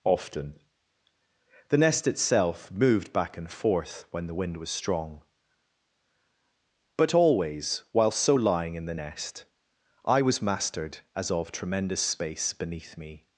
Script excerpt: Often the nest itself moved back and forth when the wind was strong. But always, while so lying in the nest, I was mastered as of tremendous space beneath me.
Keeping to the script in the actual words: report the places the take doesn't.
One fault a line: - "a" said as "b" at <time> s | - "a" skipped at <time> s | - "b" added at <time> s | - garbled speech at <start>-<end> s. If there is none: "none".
none